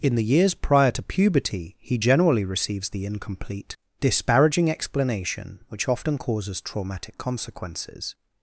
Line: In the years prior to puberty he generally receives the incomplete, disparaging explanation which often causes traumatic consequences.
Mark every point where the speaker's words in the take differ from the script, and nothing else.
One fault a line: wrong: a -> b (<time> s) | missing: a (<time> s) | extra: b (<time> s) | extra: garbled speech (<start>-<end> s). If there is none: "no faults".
no faults